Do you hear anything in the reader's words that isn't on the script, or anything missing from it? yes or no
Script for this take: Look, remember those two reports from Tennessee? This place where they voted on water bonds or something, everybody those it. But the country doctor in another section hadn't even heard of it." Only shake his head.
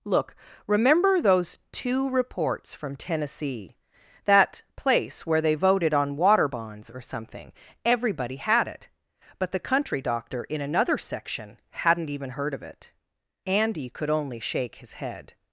yes